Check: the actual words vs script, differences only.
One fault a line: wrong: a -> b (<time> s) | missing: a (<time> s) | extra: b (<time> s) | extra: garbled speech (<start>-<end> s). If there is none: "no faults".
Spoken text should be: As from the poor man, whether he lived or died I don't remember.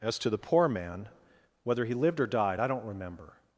wrong: from -> to (0.2 s)